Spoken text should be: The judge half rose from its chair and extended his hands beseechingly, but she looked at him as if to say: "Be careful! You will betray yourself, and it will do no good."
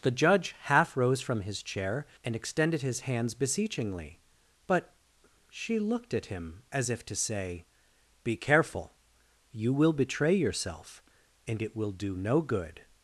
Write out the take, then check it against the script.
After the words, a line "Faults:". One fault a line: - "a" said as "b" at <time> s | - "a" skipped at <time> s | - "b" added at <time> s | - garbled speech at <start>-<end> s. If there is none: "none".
The judge half rose from his chair and extended his hands beseechingly, but she looked at him as if to say: "Be careful! You will betray yourself, and it will do no good."
Faults:
- "its" said as "his" at 1.4 s